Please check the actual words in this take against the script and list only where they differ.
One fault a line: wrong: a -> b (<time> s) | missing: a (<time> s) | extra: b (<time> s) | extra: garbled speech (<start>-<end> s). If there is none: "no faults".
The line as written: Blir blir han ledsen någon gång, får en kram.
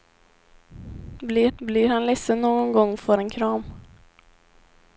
no faults